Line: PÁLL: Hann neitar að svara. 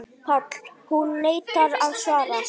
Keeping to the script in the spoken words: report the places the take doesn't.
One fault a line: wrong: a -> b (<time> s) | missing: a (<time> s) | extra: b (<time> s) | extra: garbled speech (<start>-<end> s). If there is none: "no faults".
wrong: Hann -> Hún (0.9 s)